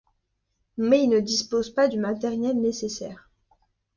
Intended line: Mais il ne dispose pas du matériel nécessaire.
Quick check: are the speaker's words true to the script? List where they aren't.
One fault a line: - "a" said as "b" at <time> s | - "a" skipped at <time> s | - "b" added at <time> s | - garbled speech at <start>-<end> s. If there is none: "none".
none